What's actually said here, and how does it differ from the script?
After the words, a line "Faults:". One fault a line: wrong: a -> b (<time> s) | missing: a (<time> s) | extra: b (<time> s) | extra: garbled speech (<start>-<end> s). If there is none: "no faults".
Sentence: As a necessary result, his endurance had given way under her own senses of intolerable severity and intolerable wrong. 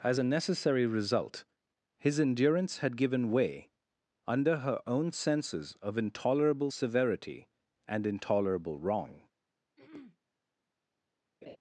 As a necessary result, his endurance had given way under her own senses of intolerable severity and intolerable wrong.
Faults:
no faults